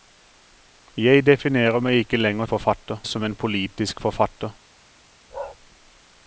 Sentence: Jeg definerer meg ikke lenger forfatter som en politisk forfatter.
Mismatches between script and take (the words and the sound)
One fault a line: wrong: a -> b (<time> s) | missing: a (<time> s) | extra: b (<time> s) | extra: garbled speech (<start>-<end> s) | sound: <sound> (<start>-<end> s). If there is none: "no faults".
sound: bark (5.3-5.6 s)